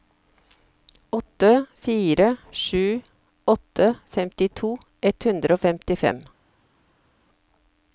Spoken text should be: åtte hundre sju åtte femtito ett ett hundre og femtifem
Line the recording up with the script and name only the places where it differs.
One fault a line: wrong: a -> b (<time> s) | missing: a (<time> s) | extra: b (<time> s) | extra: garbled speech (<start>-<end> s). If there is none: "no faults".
wrong: hundre -> fire (1.8 s)
missing: ett (5.2 s)